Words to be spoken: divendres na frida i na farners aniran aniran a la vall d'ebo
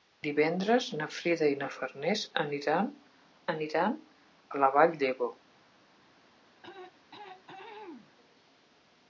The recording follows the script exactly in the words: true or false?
true